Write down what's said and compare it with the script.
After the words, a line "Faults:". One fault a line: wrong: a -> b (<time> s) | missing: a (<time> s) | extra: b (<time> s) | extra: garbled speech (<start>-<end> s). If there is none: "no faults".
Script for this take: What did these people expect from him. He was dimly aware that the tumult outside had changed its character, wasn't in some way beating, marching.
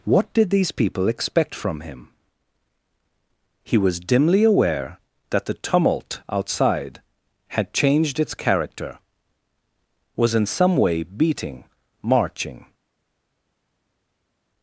What did these people expect from him. He was dimly aware that the tumult outside had changed its character, was in some way beating, marching.
Faults:
wrong: wasn't -> was (10.2 s)